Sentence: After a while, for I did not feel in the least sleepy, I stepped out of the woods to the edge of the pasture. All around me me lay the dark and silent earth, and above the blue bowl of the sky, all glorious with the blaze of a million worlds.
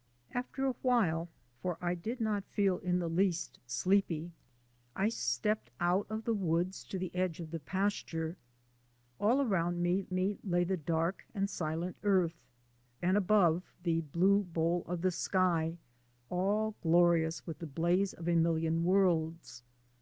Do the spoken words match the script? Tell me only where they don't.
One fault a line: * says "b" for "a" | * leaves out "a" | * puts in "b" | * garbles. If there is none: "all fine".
all fine